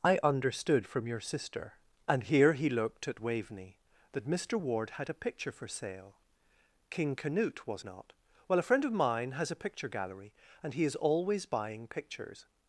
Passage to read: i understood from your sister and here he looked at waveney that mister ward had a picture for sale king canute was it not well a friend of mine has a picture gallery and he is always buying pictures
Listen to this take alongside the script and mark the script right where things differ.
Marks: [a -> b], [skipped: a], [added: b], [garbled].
i understood from your sister and here he looked at waveney that mister ward had a picture for sale king canute was [skipped: it] not well a friend of mine has a picture gallery and he is always buying pictures